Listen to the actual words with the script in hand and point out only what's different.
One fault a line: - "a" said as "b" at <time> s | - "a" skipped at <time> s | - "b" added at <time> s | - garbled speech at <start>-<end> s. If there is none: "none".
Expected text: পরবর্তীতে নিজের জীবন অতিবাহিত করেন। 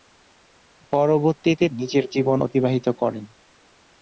none